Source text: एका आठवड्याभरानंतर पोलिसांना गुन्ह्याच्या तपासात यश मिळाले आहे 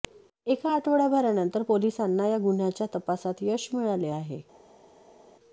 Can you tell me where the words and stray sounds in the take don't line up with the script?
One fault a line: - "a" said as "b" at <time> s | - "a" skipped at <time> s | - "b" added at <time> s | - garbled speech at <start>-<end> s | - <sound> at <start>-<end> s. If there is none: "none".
- "या" added at 2.3 s